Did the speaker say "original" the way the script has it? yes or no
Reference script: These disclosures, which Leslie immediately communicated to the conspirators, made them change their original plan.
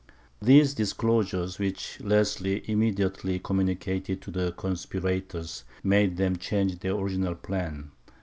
yes